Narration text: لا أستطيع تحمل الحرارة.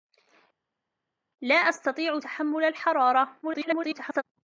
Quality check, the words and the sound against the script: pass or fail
fail